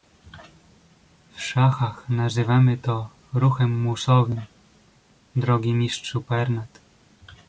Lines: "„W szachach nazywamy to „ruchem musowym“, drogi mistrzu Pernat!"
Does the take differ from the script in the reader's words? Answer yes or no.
no